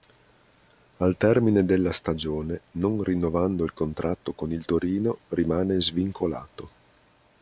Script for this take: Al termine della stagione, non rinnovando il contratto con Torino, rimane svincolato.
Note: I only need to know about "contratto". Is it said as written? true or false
true